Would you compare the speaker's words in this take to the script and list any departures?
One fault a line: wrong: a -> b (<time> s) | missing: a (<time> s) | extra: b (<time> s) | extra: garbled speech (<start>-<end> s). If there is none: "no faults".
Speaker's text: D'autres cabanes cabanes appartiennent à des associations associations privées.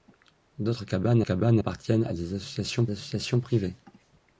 no faults